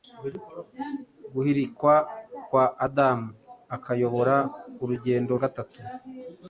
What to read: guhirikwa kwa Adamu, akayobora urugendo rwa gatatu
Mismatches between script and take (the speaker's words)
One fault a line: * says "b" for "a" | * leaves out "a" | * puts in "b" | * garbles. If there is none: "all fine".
* leaves out "rwa"